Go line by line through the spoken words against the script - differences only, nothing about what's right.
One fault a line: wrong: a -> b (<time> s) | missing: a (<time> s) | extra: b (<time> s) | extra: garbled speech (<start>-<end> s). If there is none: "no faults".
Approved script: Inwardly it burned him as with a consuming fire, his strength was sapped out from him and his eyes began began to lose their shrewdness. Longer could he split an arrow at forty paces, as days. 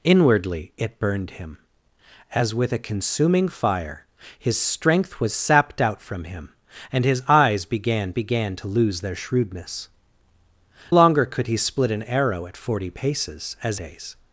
no faults